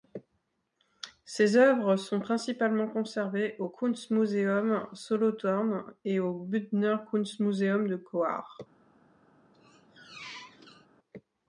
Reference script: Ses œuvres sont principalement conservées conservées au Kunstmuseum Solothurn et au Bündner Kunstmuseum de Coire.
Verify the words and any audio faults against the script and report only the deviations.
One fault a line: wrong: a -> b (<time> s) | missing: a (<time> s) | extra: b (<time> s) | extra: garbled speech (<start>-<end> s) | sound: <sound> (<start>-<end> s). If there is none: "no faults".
missing: conservées (3.6 s)
sound: squeak (9.5-10.9 s)